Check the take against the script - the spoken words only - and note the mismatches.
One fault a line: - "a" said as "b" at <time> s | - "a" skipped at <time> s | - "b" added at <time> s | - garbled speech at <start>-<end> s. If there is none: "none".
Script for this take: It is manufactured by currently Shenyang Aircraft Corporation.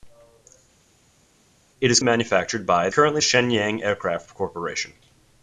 none